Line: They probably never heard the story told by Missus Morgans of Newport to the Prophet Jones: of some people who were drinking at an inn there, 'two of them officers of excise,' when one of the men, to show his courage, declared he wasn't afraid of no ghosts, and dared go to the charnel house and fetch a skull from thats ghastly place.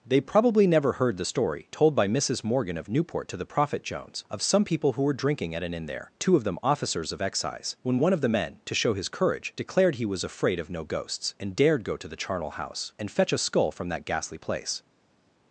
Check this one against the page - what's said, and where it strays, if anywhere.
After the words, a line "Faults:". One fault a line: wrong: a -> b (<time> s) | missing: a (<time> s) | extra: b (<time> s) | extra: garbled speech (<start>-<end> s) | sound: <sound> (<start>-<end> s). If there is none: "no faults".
They probably never heard the story told by Missus Morgan of Newport to the Prophet Jones: of some people who were drinking at an inn there, 'two of them officers of excise,' when one of the men, to show his courage, declared he was afraid of no ghosts, and dared go to the charnel house and fetch a skull from that ghastly place.
Faults:
wrong: Morgans -> Morgan (2.4 s)
wrong: wasn't -> was (10.0 s)
wrong: thats -> that (13.9 s)